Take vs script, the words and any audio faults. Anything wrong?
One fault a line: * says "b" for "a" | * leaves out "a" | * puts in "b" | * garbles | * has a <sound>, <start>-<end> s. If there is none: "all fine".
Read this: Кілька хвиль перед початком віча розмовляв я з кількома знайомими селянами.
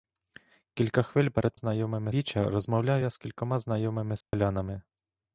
* says "знайомими" for "початком"
* has a dropout, 4.2-4.3 s